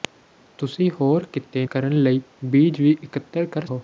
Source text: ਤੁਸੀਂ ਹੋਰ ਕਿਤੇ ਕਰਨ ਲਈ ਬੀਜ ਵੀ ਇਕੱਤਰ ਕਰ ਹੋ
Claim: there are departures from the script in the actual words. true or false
false